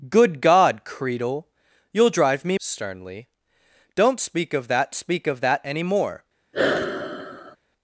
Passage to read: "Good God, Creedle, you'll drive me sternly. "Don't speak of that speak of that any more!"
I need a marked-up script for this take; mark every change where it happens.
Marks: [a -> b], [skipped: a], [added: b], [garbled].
"Good God, Creedle, you'll drive me sternly. "Don't speak of that speak of that any more!"